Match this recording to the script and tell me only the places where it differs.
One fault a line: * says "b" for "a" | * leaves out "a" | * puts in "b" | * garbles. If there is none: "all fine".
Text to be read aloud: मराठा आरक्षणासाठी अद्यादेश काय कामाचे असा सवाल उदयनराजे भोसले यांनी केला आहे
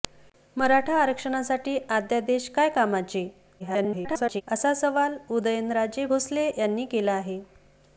* garbles